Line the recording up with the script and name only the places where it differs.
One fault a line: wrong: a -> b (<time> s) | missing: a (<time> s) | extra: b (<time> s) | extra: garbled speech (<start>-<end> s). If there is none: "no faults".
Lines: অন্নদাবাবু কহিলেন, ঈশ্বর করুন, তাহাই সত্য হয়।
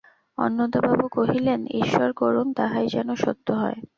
extra: যেন (2.9 s)